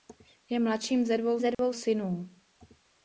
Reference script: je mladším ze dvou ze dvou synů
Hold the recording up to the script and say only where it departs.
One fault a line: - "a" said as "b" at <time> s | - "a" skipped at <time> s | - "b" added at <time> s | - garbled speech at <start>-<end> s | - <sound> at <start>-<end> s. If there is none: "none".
- dropout at 1.5-1.6 s